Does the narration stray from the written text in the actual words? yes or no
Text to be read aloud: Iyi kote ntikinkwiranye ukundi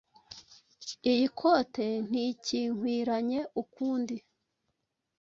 no